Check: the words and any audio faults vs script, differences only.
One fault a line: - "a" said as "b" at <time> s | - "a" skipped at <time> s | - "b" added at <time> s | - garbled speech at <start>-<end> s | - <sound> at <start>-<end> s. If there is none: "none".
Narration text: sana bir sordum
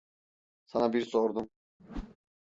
- whoosh at 1.8-2.2 s